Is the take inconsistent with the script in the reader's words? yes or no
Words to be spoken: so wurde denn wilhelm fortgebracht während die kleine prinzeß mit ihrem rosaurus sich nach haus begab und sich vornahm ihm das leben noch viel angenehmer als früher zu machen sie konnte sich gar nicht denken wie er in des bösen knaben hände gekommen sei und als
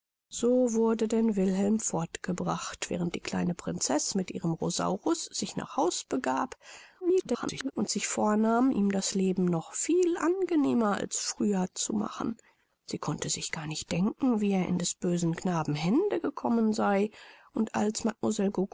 yes